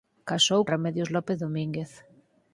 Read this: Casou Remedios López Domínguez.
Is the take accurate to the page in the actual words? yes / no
yes